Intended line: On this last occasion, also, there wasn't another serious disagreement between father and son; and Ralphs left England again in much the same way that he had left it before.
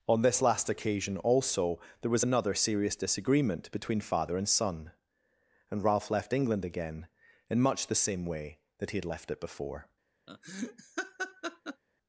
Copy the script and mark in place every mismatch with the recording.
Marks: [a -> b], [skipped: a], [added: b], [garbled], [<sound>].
On this last occasion, also, there [wasn't -> was] another serious disagreement between father and son; and [Ralphs -> Ralph] left England again in much the same way that he had left it before. [laugh]